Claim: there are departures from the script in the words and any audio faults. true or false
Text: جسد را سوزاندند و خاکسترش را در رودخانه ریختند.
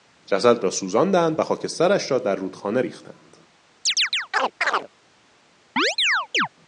true